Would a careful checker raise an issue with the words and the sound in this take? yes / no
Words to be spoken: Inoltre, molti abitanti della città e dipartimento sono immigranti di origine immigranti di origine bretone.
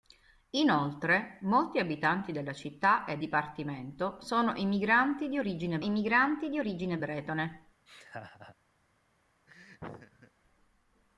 yes